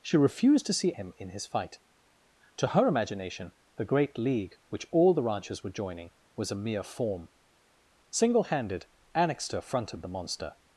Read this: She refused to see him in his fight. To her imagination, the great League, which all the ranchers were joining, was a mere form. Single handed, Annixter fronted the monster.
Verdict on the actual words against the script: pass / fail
pass